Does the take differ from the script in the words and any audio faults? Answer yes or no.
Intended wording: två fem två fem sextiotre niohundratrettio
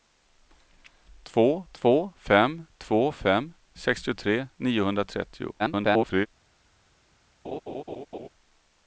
yes